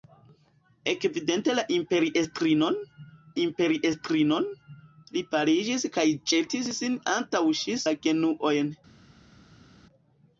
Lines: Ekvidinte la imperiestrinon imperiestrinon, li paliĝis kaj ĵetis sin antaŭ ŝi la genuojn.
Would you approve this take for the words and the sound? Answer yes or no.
yes